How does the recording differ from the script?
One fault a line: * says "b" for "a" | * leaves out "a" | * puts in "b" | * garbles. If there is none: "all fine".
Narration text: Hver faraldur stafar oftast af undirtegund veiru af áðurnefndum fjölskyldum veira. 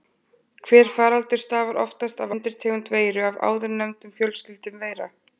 all fine